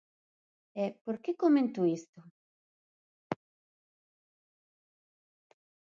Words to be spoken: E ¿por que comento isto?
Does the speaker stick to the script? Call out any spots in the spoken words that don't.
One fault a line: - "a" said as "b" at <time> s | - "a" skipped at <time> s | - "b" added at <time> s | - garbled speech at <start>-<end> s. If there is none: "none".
none